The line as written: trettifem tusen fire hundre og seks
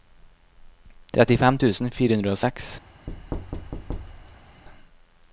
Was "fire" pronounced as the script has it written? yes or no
yes